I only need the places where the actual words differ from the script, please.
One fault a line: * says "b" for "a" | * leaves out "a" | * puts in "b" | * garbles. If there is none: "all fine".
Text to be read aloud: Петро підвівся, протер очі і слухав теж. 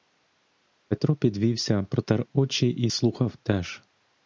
all fine